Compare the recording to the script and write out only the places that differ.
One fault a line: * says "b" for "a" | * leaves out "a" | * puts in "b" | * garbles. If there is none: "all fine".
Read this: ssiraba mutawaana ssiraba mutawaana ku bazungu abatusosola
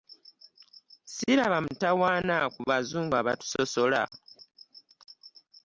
* leaves out "ssiraba mutawaana"